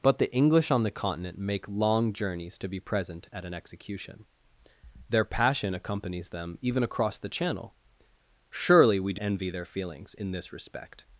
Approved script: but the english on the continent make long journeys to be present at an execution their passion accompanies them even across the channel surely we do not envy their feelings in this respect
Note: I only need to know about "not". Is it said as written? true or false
false